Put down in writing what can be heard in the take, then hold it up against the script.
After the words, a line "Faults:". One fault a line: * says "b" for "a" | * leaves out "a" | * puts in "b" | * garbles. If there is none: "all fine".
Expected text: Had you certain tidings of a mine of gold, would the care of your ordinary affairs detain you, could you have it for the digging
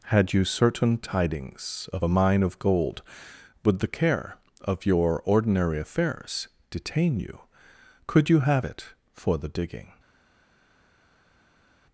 Had you certain tidings of a mine of gold, would the care of your ordinary affairs detain you, could you have it for the digging
Faults:
all fine